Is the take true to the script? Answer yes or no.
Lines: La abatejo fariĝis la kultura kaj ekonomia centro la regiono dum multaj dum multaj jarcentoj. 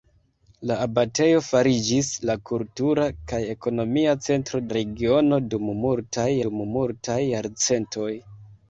yes